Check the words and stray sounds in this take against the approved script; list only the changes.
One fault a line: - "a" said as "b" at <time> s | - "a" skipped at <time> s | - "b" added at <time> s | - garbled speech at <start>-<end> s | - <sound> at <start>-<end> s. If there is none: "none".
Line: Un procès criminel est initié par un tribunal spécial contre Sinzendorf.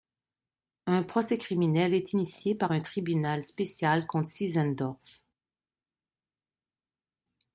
none